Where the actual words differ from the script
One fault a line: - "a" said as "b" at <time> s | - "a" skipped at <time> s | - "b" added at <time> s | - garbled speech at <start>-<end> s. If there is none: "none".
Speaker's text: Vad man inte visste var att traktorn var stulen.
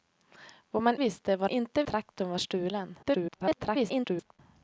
- "inte" skipped at 1.0 s
- "att" said as "inte" at 1.5 s
- garbled speech at 3.0-4.4 s